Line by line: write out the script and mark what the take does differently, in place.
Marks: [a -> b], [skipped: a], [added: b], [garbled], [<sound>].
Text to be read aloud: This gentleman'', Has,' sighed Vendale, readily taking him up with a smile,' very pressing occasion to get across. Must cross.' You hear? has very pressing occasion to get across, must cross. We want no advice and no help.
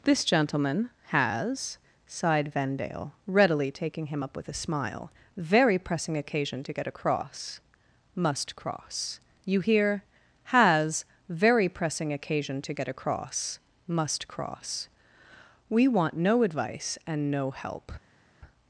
This gentleman'', Has,' sighed Vendale, readily taking him up with a smile,' very pressing occasion to get across. Must cross.' You hear? has very pressing occasion to get across, must cross. We want no advice and no help.